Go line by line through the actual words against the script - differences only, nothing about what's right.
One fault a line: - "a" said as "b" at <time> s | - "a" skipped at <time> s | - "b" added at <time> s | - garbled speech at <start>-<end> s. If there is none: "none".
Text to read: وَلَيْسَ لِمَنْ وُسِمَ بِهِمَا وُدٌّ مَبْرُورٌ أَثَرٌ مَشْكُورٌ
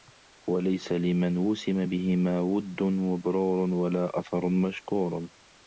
- "وَلَا" added at 3.7 s